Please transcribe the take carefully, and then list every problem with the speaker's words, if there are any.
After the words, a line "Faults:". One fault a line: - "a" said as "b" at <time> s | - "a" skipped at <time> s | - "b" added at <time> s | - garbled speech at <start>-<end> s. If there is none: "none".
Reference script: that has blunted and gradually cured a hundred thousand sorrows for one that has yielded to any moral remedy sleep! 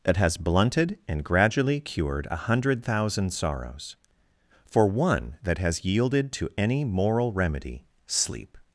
that has blunted and gradually cured a hundred thousand sorrows for one that has yielded to any moral remedy sleep!
Faults:
none